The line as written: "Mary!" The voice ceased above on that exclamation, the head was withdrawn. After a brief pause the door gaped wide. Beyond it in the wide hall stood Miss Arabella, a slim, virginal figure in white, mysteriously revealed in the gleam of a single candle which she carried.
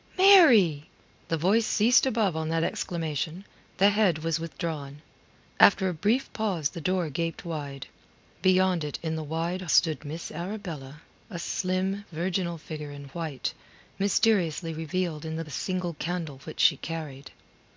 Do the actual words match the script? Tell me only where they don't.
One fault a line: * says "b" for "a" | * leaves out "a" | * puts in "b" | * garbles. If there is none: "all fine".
* leaves out "hall"
* leaves out "gleam of"